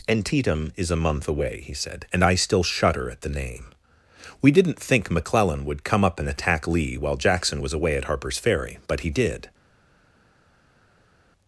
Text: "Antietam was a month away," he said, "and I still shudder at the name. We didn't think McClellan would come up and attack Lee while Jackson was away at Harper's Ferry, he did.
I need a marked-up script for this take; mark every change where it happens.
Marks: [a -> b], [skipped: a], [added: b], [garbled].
"Antietam [was -> is] a month away," he said, "and I still shudder at the name. We didn't think McClellan would come up and attack Lee while Jackson was away at Harper's Ferry, [added: but] he did.